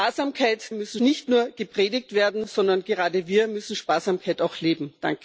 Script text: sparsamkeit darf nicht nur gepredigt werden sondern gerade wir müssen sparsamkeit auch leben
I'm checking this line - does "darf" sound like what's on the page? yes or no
no